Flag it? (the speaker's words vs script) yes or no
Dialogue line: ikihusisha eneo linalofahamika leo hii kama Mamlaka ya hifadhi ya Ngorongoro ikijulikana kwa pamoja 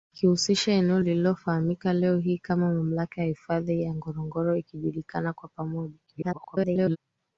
yes